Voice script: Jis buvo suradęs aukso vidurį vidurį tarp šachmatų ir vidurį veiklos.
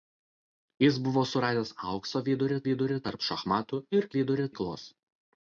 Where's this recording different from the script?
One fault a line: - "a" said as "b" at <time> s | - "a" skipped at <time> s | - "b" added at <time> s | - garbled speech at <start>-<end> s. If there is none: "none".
none